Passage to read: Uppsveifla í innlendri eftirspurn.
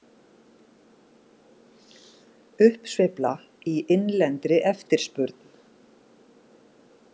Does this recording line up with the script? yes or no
yes